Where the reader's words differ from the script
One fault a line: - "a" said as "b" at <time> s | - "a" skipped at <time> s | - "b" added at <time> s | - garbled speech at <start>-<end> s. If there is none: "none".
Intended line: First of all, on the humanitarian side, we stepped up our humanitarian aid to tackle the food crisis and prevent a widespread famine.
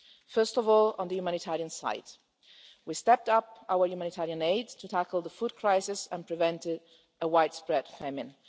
none